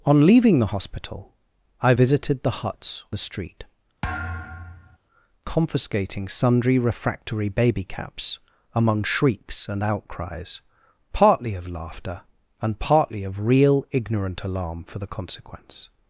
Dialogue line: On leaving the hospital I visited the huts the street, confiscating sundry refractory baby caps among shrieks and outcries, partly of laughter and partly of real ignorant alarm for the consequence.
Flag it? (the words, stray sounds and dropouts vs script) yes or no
yes